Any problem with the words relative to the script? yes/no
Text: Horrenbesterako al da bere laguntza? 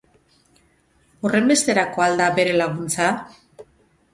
no